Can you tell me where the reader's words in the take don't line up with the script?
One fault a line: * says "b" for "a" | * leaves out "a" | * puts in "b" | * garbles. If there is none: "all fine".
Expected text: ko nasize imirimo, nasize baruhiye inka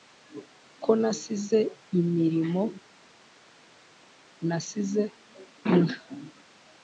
* leaves out "baruhiye"